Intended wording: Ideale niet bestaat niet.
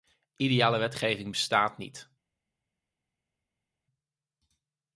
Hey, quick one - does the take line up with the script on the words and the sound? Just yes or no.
no